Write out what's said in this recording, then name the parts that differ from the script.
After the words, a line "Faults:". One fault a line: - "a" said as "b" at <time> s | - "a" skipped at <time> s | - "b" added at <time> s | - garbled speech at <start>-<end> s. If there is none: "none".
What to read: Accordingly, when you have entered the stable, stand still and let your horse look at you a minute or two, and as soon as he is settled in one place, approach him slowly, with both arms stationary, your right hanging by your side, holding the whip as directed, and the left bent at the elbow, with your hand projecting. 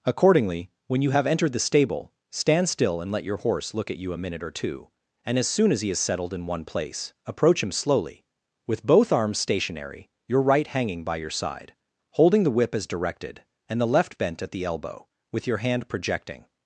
Accordingly, when you have entered the stable, stand still and let your horse look at you a minute or two, and as soon as he is settled in one place, approach him slowly, with both arms stationary, your right hanging by your side, holding the whip as directed, and the left bent at the elbow, with your hand projecting.
Faults:
none